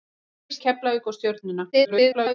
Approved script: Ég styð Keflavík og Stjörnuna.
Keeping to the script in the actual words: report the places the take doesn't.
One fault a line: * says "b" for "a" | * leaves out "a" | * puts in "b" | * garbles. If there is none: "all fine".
* leaves out "styð"
* garbles